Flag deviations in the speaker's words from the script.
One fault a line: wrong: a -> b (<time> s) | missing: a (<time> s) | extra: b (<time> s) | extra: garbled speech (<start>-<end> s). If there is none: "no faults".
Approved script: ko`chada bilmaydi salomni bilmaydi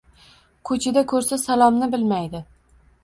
wrong: bilmaydi -> ko`rsa (1.1 s)